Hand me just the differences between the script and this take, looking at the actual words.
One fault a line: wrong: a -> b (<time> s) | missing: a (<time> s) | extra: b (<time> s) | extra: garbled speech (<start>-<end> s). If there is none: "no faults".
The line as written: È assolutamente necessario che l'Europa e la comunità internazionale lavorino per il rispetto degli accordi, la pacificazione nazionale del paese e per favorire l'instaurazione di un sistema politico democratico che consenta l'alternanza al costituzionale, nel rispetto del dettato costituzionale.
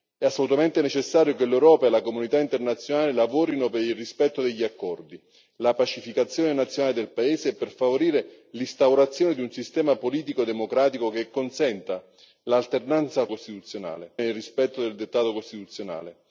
no faults